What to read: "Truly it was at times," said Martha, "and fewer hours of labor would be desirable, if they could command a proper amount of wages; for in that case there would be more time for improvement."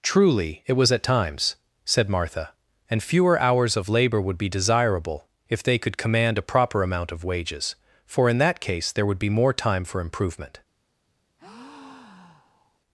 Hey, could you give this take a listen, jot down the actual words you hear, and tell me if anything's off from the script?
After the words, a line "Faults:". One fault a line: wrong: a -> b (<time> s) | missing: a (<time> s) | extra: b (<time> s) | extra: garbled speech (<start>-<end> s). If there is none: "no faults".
"Truly it was at times," said Martha, "and fewer hours of labor would be desirable, if they could command a proper amount of wages; for in that case there would be more time for improvement."
Faults:
no faults